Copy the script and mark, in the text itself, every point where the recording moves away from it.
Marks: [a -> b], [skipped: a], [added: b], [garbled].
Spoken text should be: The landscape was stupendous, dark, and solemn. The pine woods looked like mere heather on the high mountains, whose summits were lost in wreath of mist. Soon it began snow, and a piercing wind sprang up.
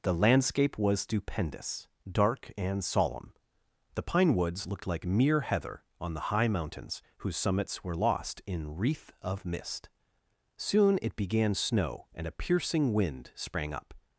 The landscape was stupendous, dark, and solemn. The pine woods looked like mere heather on the high mountains, whose summits were lost in wreath of mist. Soon it began snow, and a piercing wind sprang up.